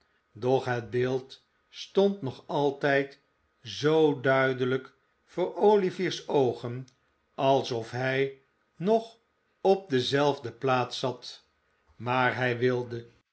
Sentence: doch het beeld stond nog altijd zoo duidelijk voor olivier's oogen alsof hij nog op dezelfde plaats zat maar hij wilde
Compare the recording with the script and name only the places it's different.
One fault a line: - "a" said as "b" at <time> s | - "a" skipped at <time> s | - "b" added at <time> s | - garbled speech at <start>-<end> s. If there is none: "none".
none